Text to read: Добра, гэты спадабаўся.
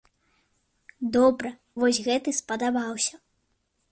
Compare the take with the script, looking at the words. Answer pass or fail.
fail